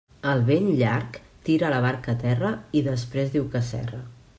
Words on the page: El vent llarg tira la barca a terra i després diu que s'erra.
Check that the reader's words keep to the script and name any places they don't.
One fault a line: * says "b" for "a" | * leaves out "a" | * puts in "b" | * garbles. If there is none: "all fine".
all fine